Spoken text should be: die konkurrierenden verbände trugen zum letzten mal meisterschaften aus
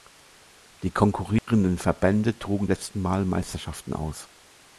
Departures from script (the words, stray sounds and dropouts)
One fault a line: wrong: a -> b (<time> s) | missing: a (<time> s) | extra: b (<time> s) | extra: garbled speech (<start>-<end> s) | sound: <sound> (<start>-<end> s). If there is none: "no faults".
sound: dropout (1.4-1.5 s)
missing: zum (2.7 s)